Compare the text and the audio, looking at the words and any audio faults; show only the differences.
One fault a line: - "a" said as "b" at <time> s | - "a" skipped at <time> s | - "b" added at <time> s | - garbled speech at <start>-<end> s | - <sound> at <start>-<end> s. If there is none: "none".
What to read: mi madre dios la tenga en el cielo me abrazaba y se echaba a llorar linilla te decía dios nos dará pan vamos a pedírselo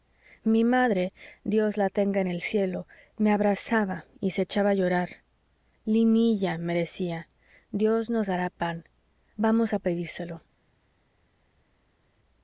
- "te" said as "me" at 6.6 s